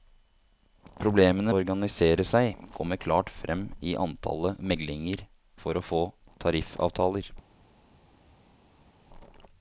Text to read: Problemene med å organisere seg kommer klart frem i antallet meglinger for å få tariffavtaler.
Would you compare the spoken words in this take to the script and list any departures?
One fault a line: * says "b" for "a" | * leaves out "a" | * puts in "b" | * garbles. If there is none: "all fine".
* leaves out "med å"